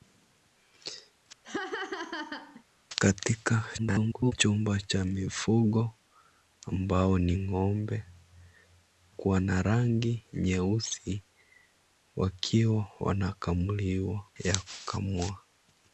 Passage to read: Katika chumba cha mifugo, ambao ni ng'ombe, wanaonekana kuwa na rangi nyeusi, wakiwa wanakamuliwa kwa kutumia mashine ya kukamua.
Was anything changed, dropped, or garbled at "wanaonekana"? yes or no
yes